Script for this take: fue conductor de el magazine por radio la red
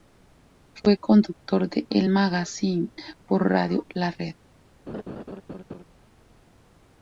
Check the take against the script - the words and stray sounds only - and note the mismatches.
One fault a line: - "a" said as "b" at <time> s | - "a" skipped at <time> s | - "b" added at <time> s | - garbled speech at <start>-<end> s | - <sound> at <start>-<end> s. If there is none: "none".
- laugh at 4.9-5.8 s